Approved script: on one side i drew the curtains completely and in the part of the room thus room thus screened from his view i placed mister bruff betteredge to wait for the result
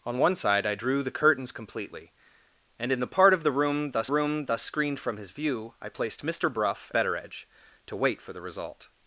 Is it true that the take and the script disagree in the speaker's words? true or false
false